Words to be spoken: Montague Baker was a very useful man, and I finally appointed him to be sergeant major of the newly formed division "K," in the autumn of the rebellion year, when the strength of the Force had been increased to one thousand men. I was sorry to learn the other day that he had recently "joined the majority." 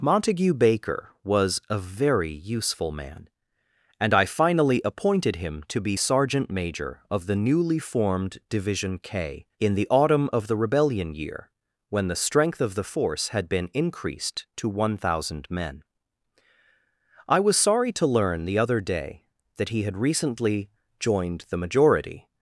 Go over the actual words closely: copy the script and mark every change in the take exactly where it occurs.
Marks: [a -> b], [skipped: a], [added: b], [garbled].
Montague Baker was a very useful man, and I finally appointed him to be sergeant major of the newly formed division "K," in the autumn of the rebellion year, when the strength of the Force had been increased to one thousand men. I was sorry to learn the other day that he had recently "joined the majority."